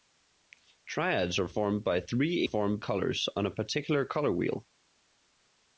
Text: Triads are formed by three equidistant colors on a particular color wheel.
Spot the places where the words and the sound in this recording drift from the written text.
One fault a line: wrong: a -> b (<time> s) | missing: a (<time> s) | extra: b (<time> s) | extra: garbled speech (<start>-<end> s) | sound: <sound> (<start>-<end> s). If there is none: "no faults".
wrong: equidistant -> formed (2.4 s)